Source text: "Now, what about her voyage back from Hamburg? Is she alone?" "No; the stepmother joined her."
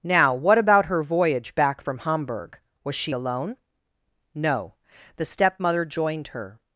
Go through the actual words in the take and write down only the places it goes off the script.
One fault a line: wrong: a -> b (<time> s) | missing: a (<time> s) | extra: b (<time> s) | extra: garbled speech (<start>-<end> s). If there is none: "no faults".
wrong: Is -> Was (2.8 s)